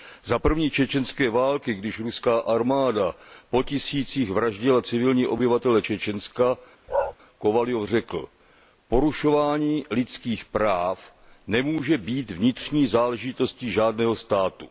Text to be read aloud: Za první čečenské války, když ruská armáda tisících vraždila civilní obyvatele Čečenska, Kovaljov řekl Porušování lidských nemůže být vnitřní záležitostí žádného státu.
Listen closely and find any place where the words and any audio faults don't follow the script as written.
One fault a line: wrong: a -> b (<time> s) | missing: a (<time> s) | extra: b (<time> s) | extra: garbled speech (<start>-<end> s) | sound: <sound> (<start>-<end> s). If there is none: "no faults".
extra: po (3.5 s)
sound: bark (6.9-7.1 s)
extra: práv (10.4 s)